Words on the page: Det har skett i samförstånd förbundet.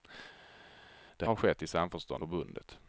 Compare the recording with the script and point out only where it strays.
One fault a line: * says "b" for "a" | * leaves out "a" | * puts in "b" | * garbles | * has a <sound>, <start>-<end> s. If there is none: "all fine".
all fine